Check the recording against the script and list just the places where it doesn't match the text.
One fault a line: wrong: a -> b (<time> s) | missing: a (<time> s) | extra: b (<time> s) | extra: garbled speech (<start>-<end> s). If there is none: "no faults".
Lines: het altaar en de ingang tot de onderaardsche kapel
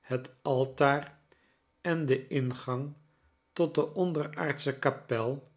no faults